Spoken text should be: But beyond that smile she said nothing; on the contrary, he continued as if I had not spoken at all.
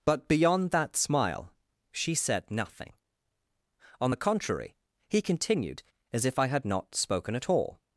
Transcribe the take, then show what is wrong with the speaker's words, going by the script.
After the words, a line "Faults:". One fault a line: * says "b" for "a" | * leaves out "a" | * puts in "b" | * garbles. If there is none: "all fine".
But beyond that smile she said nothing; on the contrary, he continued as if I had not spoken at all.
Faults:
all fine